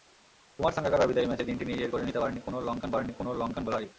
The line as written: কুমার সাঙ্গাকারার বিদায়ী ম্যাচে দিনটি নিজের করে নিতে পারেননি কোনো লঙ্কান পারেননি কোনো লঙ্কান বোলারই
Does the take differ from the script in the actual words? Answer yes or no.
no